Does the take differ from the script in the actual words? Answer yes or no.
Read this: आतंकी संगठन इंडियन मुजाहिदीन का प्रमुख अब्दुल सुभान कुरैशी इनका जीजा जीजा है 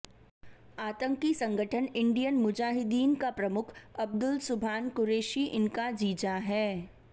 yes